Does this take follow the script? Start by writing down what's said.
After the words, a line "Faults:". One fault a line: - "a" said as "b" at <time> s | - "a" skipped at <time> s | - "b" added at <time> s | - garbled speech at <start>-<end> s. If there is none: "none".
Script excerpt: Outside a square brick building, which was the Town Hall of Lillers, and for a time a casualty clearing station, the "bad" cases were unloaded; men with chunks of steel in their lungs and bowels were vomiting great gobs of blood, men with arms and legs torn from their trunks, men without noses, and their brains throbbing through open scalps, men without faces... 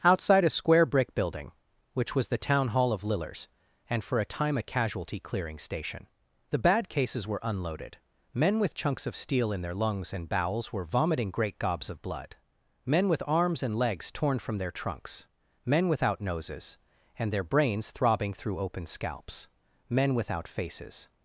Outside a square brick building, which was the Town Hall of Lillers, and for a time a casualty clearing station, the "bad" cases were unloaded; men with chunks of steel in their lungs and bowels were vomiting great gobs of blood, men with arms and legs torn from their trunks, men without noses, and their brains throbbing through open scalps, men without faces...
Faults:
none